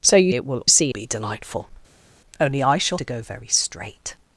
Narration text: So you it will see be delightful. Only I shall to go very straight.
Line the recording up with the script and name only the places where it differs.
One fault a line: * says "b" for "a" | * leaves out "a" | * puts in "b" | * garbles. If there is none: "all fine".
all fine